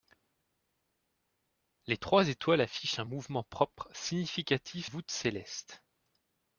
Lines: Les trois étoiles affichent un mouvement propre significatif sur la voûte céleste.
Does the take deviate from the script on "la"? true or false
true